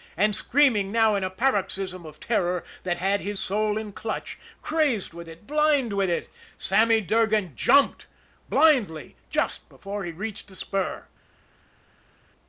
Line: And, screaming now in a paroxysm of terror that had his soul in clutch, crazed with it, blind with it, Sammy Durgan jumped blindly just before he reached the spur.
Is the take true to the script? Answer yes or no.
yes